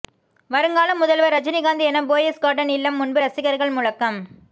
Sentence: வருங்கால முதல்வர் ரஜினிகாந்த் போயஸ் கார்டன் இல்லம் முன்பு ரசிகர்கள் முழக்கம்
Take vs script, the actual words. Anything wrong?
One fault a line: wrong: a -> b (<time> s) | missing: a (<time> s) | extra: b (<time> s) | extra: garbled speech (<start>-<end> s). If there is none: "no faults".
extra: என (1.9 s)